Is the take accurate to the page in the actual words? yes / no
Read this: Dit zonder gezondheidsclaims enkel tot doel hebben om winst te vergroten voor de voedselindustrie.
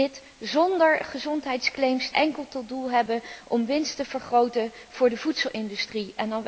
yes